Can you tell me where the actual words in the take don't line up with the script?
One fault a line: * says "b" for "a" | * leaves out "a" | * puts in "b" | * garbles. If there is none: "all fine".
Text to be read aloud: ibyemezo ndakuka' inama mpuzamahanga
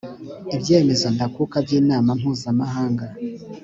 * puts in "by"